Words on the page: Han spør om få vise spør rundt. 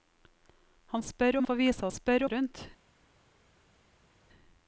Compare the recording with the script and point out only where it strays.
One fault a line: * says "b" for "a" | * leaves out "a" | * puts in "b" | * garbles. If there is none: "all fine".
all fine